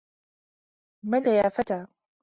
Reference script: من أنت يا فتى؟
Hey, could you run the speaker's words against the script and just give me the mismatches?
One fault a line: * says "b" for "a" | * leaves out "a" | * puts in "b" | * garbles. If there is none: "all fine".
* leaves out "أنت"